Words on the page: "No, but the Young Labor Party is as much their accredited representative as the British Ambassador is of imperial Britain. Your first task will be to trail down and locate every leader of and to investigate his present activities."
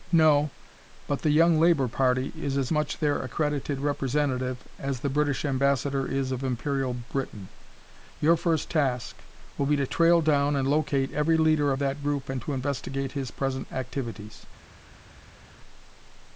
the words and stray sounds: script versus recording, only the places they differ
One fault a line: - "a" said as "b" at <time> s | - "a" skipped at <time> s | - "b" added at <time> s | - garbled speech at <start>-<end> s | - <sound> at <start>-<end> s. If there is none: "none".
- "that group" added at 11.8 s